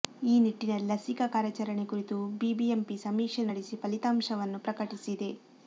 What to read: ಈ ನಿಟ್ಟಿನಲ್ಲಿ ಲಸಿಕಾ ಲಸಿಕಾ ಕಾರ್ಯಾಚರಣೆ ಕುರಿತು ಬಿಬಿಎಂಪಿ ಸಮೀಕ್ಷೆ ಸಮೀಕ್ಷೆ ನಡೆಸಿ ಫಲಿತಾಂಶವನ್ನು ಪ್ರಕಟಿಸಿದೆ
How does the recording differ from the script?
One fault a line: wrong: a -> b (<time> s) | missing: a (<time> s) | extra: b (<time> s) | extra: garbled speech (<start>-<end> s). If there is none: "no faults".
missing: ಲಸಿಕಾ (1.2 s)
missing: ಸಮೀಕ್ಷೆ (3.4 s)